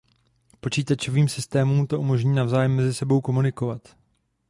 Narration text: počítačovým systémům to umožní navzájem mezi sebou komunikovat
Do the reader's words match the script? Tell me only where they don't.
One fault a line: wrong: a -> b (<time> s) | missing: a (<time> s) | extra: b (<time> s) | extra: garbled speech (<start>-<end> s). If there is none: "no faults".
no faults